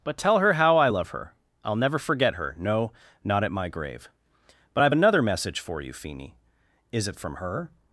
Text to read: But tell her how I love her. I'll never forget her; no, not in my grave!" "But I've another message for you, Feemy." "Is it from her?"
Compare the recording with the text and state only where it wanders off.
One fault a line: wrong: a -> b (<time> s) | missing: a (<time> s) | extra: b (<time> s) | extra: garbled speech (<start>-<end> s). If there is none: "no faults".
wrong: in -> at (3.4 s)